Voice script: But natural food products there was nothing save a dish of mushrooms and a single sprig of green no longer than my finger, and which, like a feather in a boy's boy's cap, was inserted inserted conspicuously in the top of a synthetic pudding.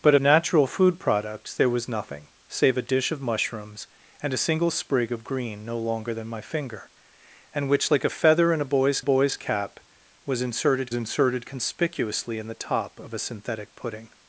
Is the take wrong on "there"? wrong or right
right